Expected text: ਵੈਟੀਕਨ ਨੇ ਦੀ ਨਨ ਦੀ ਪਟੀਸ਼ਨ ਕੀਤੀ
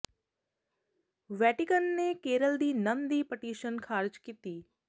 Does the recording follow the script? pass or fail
fail